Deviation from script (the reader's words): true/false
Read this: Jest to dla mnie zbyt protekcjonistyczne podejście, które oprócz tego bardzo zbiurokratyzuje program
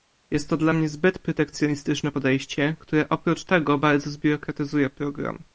false